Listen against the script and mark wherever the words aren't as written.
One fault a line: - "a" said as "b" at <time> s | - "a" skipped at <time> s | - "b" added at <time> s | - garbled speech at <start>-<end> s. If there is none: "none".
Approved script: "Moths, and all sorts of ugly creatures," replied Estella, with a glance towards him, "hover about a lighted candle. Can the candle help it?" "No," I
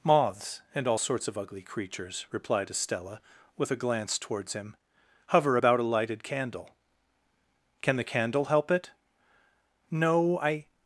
none